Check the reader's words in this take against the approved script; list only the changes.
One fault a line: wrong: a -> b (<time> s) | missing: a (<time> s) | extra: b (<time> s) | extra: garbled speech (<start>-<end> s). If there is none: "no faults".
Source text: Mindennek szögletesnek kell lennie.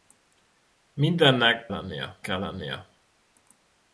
wrong: szögletesnek -> lennie (1.7 s)